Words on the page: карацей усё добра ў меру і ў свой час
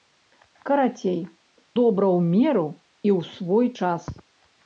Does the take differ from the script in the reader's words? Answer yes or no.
yes